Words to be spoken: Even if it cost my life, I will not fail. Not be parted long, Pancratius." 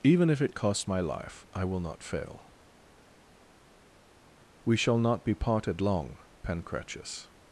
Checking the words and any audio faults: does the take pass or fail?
fail